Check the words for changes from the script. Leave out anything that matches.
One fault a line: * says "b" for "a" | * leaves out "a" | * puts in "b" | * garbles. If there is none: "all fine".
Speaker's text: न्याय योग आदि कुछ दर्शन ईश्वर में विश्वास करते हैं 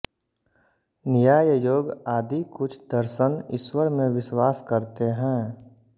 all fine